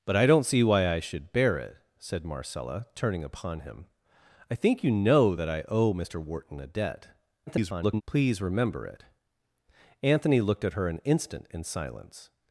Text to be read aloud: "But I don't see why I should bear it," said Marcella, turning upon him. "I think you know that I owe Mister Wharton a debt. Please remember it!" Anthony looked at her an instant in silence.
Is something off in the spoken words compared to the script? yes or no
yes